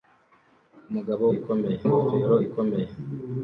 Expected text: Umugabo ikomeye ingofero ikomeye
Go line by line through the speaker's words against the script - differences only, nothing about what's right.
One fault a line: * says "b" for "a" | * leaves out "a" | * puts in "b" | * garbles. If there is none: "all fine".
all fine